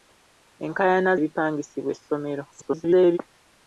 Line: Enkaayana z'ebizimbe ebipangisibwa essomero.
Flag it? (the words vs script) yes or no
yes